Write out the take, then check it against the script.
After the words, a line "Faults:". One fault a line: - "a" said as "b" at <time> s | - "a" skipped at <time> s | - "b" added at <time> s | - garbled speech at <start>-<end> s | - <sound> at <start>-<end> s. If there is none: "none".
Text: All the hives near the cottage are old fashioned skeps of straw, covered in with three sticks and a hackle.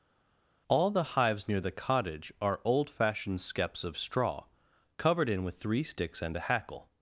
All the hives near the cottage are old fashioned skeps of straw, covered in with three sticks and a hackle.
Faults:
none